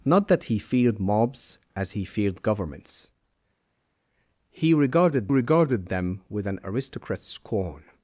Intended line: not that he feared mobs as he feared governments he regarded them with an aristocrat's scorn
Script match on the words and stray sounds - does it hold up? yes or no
no